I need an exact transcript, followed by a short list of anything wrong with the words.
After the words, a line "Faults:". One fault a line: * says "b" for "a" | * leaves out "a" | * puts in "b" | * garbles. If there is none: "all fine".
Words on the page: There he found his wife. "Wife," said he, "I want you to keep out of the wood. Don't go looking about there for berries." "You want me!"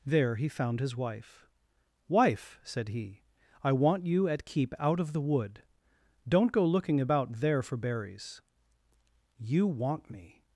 There he found his wife. "Wife," said he, "I want you at keep out of the wood. Don't go looking about there for berries." "You want me!"
Faults:
* says "at" for "to"